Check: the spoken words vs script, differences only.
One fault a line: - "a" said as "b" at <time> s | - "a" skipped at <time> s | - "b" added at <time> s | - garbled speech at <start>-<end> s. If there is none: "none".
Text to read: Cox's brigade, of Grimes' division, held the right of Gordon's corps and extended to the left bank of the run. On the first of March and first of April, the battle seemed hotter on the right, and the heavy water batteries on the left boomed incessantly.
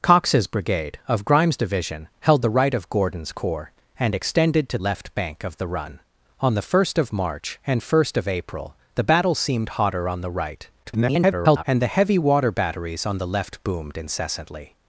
- "the" skipped at 4.8 s
- garbled speech at 10.8-11.6 s